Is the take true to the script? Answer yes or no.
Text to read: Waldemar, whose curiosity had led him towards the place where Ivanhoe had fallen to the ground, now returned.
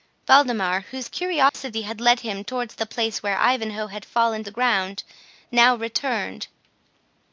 no